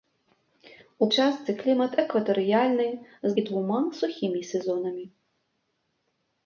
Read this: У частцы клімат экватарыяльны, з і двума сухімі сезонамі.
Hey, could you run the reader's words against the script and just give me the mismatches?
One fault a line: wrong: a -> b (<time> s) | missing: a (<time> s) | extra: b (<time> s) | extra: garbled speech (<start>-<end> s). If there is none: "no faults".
no faults